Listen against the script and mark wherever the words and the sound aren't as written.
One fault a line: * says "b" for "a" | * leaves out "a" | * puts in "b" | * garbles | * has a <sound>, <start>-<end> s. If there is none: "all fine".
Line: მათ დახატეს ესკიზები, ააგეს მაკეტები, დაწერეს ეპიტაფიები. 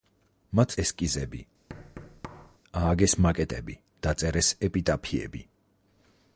* leaves out "დახატეს"
* has a thud, 1.7-2.6 s